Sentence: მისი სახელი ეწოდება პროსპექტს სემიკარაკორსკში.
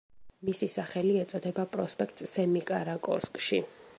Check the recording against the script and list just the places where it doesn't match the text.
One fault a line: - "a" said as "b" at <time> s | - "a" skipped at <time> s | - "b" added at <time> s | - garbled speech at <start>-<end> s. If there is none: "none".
none